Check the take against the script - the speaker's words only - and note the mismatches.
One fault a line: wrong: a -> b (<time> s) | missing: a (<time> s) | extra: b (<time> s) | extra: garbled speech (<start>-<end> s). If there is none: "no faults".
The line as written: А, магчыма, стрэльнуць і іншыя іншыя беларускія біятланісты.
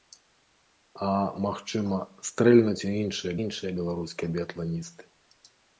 no faults